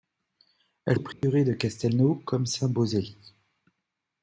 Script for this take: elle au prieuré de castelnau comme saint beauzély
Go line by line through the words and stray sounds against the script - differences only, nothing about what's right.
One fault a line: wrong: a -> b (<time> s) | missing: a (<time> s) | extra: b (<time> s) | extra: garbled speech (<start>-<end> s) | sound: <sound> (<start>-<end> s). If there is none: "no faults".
sound: dropout (1.1-1.2 s)